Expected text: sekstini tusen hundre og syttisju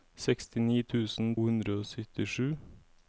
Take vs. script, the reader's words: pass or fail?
pass